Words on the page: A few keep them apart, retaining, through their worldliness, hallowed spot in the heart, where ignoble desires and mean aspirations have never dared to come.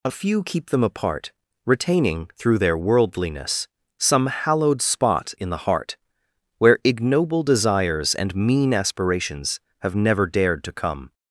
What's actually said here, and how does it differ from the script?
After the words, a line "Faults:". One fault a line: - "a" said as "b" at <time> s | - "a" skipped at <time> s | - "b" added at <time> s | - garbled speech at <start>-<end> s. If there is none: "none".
A few keep them apart, retaining, through their worldliness, some hallowed spot in the heart, where ignoble desires and mean aspirations have never dared to come.
Faults:
- "some" added at 4.0 s